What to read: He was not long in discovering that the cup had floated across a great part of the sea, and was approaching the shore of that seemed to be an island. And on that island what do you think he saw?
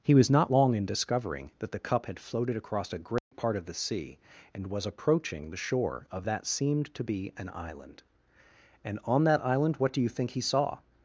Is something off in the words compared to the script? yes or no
no